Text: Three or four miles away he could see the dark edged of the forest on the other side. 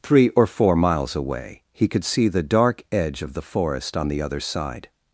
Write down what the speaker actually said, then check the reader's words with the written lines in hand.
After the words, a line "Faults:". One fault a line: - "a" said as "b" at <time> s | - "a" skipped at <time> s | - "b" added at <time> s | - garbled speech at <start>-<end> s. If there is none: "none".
Three or four miles away he could see the dark edge of the forest on the other side.
Faults:
- "edged" said as "edge" at 2.9 s